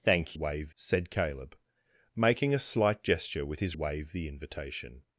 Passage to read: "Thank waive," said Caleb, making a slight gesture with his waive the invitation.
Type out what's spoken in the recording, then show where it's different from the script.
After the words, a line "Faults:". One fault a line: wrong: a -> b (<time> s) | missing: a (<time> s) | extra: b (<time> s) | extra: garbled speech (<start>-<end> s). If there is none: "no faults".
"Thank waive," said Caleb, making a slight gesture with his waive the invitation.
Faults:
no faults